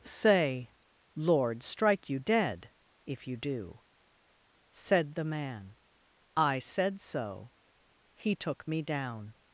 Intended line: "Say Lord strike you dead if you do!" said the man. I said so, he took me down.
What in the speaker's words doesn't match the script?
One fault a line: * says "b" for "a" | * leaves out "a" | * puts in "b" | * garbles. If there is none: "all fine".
all fine